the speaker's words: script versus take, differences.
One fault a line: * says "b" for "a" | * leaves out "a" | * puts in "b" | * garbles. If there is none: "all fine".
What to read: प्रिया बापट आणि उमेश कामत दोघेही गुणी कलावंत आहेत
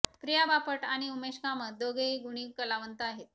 all fine